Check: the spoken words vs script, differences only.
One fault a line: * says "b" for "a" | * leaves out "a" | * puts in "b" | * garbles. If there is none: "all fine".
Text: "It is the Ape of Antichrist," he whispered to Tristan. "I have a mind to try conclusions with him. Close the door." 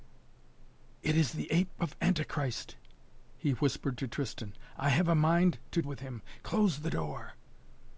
* leaves out "try conclusions"